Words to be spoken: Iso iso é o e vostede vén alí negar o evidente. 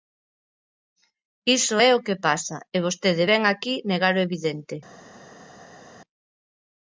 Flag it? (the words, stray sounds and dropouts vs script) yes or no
yes